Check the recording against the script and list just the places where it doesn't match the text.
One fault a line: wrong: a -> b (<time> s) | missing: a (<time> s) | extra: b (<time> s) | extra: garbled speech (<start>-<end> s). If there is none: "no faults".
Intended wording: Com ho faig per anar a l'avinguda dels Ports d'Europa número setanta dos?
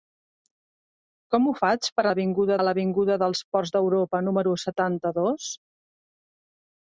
wrong: anar -> l'avinguda (2.1 s)